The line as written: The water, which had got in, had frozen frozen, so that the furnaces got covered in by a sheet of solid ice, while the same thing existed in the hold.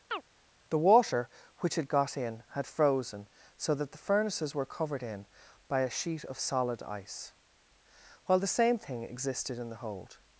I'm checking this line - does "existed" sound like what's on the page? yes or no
yes